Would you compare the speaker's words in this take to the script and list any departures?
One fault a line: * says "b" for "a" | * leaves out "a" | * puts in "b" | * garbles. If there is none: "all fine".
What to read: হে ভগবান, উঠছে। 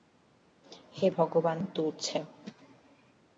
all fine